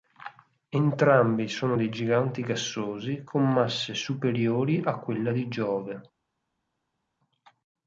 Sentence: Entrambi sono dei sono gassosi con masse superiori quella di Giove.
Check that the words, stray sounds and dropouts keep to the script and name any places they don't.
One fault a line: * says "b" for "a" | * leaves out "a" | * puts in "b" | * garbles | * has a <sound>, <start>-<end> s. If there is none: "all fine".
* says "giganti" for "sono"
* puts in "a"